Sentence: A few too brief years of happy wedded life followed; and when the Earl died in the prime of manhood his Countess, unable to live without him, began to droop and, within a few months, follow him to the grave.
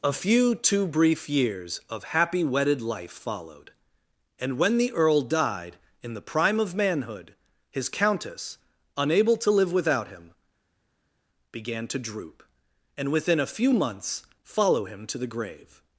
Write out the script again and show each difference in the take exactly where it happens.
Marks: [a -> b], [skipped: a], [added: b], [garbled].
A few too brief years of happy wedded life followed; and when the Earl died in the prime of manhood his Countess, unable to live without him, began to droop and, within a few months, follow him to the grave.